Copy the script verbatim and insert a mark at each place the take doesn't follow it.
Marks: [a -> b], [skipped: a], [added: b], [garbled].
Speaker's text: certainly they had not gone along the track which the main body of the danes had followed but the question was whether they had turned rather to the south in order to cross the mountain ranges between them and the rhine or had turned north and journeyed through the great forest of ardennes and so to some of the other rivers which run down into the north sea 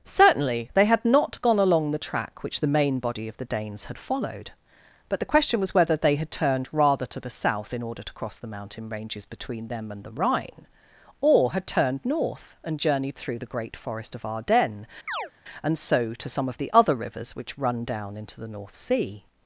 certainly they had not gone along the track which the main body of the danes had followed but the question was whether they had turned rather to the south in order to cross the mountain ranges between them and the rhine or had turned north and journeyed through the great forest of ardennes and so to some of the other rivers which run down into the north sea